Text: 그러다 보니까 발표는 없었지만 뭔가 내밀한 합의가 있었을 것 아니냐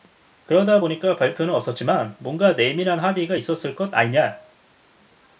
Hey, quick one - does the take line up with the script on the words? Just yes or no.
yes